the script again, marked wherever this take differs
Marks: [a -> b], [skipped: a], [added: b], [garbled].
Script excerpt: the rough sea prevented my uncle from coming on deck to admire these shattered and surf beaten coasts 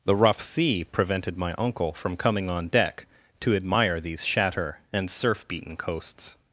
the rough sea prevented my uncle from coming on deck to admire these [shattered -> shatter] and surf beaten coasts